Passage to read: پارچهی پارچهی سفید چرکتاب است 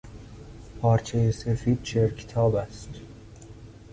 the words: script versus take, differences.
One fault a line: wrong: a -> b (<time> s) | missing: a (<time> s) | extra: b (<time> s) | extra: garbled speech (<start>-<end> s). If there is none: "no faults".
missing: پارچهی (1.3 s)